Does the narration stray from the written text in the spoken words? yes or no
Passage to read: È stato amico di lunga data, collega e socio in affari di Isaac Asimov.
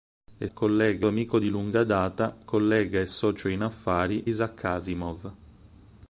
yes